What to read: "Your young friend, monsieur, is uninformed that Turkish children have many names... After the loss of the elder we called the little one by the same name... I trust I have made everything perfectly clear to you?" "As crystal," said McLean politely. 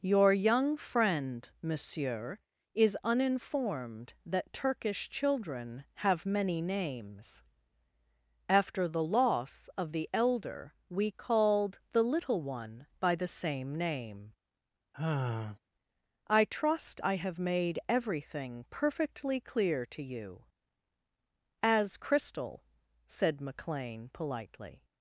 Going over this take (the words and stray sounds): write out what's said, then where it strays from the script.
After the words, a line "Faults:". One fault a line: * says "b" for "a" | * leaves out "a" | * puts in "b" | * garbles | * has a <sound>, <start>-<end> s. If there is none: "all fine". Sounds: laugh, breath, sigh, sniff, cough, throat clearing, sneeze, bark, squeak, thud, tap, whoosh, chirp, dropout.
"Your young friend, monsieur, is uninformed that Turkish children have many names... After the loss of the elder we called the little one by the same name... I trust I have made everything perfectly clear to you?" "As crystal," said McLean politely.
Faults:
* has a sigh, 14.9-15.6 s